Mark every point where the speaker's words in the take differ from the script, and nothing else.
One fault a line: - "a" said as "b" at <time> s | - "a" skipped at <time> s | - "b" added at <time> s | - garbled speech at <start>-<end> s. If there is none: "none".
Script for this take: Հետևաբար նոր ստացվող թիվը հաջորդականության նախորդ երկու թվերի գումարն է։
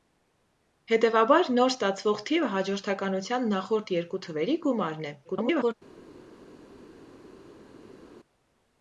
- garbled speech at 5.2-5.7 s